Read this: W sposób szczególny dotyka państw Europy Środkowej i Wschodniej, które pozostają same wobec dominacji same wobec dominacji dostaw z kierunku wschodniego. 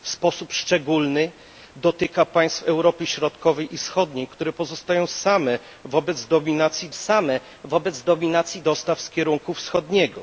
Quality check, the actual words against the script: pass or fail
pass